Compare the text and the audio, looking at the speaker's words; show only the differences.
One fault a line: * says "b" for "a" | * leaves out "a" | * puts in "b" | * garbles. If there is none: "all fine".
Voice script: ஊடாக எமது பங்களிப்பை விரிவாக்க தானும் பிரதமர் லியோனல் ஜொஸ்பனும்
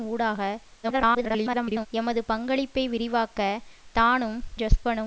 * garbles
* leaves out "பிரதமர் லியோனல்"